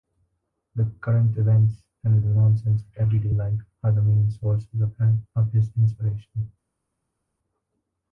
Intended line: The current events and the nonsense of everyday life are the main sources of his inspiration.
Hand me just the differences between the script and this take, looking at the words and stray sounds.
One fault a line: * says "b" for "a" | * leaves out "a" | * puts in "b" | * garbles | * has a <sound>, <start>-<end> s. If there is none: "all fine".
all fine